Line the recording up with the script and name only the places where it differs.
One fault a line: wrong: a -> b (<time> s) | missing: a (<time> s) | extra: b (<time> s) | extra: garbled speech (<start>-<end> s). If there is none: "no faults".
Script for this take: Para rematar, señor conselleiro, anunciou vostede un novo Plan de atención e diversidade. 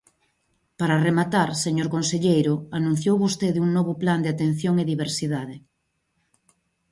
no faults